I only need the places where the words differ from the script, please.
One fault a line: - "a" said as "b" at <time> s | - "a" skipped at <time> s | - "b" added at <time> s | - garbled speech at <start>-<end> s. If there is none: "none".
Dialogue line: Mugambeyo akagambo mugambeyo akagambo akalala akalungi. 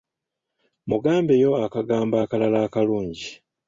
- "mugambeyo akagambo" skipped at 2.1 s